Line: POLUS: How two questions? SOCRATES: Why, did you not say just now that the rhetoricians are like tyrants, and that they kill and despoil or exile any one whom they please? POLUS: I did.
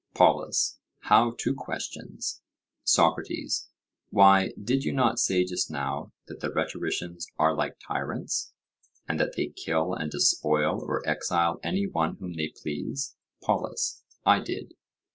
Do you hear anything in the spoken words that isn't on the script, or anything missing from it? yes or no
no